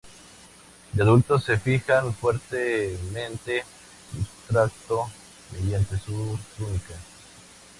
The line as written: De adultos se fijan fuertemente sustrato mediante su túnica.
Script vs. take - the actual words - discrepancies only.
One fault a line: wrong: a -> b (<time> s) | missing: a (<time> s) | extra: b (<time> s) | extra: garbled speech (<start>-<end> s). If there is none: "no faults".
no faults